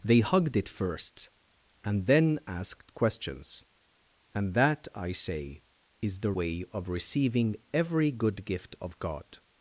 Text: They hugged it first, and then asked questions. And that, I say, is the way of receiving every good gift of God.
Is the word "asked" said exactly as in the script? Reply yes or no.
yes